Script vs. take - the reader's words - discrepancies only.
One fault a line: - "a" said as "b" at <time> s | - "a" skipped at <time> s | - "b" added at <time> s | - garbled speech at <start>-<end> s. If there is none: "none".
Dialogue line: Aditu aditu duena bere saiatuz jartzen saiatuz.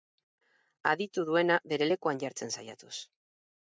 - "aditu" skipped at 1.3 s
- "saiatuz" said as "lekuan" at 1.9 s